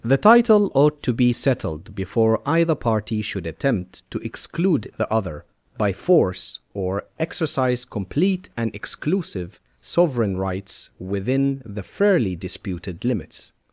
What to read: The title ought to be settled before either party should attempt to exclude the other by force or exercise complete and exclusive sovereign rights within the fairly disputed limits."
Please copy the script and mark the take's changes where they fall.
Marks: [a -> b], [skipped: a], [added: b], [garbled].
The title ought to be settled before either party should attempt to exclude the other by force or exercise complete and exclusive sovereign rights within the fairly disputed limits."